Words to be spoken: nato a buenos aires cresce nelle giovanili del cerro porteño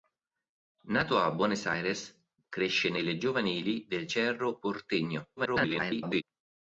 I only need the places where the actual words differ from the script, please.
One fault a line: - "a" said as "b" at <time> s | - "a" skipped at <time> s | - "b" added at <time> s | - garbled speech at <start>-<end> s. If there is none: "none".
- garbled speech at 5.4-6.2 s